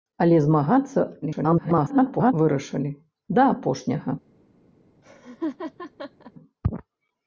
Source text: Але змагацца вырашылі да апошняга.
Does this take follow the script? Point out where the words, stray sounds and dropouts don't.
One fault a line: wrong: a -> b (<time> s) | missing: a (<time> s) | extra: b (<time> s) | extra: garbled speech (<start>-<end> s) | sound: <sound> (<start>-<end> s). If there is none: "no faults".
extra: garbled speech (1.2-2.3 s)
sound: laugh (5.0-6.3 s)